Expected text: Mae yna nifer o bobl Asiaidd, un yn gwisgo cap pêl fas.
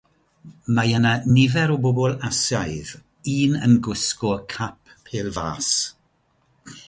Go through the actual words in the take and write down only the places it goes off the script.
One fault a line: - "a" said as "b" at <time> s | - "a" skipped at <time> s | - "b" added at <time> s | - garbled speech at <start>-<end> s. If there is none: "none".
none